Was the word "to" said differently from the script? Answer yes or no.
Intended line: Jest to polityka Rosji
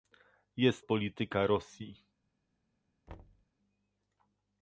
yes